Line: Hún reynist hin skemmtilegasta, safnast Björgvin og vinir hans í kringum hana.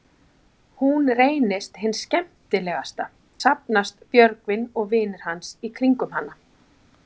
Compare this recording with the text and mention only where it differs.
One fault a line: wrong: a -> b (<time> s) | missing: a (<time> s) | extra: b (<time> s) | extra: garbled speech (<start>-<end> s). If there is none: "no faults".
no faults